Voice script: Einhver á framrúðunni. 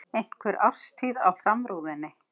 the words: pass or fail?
fail